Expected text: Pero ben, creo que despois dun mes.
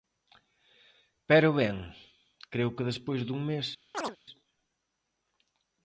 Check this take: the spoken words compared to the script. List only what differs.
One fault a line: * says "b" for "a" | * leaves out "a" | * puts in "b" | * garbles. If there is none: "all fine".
all fine